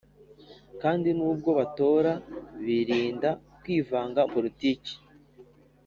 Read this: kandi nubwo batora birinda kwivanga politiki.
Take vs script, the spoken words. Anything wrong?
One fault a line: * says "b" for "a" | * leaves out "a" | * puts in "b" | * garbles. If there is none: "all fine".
all fine